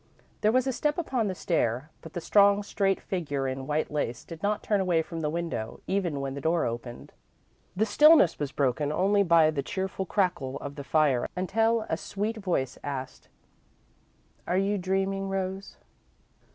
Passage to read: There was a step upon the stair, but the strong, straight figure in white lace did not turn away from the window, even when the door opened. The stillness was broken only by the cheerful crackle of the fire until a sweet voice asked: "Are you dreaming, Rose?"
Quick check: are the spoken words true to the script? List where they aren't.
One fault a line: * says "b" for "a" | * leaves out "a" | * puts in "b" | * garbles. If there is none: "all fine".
all fine